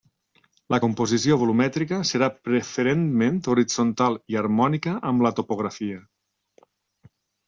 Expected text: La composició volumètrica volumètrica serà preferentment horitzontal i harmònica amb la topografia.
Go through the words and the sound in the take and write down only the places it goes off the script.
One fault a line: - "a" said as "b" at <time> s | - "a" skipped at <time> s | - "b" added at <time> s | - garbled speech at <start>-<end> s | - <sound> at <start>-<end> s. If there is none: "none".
- "volumètrica" skipped at 2.0 s